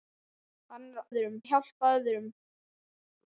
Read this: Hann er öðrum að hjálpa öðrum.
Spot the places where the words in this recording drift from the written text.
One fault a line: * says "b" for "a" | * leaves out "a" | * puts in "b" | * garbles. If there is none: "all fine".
all fine